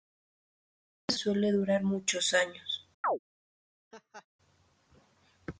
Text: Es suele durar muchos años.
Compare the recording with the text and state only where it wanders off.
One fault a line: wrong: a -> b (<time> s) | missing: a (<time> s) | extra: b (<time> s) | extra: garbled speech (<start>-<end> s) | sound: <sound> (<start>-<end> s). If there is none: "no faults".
sound: chirp (3.0-3.2 s)
sound: laugh (3.9-4.3 s)